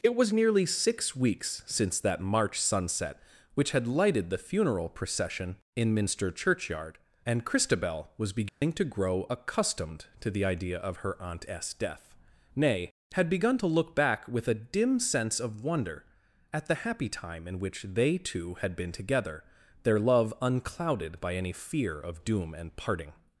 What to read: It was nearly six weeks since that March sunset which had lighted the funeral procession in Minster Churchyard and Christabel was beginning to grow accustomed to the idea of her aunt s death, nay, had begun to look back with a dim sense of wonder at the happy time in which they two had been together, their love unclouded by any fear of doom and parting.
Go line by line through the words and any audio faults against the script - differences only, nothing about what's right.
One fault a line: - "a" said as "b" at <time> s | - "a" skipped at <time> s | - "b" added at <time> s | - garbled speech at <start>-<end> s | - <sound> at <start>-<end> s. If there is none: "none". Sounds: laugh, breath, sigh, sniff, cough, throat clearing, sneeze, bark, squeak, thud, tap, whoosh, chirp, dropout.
- dropout at 8.5-8.6 s